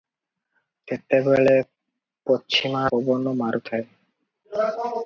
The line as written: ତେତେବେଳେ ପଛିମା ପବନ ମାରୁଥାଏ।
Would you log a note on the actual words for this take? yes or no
no